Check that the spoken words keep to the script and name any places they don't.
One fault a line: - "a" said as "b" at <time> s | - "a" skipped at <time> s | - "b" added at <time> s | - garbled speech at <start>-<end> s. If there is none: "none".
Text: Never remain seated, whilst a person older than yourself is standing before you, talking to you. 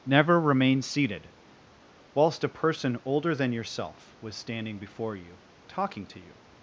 - "is" said as "was" at 4.2 s